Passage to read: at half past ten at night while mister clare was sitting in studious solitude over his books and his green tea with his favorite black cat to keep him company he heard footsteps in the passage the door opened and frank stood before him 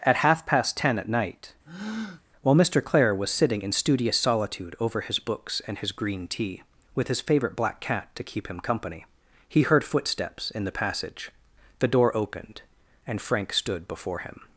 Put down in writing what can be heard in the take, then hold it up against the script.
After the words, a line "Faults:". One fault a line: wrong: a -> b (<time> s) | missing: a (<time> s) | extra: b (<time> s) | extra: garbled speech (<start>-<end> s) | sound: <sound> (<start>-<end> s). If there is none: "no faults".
at half past ten at night while mister clare was sitting in studious solitude over his books and his green tea with his favorite black cat to keep him company he heard footsteps in the passage the door opened and frank stood before him
Faults:
sound: breath (1.6-2.2 s)